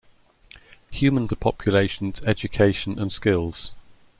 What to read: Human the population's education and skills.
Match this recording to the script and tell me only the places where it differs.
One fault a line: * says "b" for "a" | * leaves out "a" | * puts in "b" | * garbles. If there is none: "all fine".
all fine